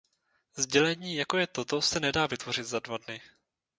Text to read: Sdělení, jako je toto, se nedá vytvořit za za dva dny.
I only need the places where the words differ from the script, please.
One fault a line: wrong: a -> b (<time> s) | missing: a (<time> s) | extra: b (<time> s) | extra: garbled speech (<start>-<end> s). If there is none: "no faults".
missing: za (2.8 s)